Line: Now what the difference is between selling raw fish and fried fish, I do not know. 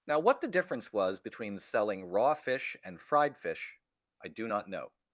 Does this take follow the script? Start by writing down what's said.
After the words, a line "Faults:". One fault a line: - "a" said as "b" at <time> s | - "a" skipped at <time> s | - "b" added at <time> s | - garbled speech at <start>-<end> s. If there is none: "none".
Now what the difference was between selling raw fish and fried fish, I do not know.
Faults:
- "is" said as "was" at 0.9 s